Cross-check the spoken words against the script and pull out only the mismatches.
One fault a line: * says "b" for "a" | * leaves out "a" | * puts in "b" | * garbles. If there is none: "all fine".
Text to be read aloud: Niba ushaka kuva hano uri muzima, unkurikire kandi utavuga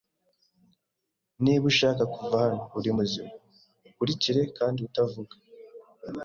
all fine